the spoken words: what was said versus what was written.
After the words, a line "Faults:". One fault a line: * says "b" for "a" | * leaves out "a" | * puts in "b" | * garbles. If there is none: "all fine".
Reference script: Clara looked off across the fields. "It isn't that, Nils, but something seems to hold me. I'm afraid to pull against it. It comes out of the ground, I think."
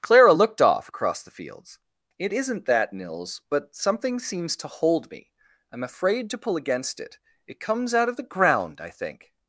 Clara looked off across the fields. "It isn't that, Nils, but something seems to hold me. I'm afraid to pull against it. It comes out of the ground, I think."
Faults:
all fine